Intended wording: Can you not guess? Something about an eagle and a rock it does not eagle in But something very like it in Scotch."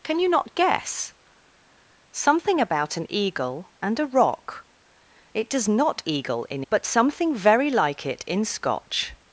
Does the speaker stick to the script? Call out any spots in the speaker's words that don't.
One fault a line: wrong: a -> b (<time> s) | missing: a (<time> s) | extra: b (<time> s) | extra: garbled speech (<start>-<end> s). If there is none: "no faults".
no faults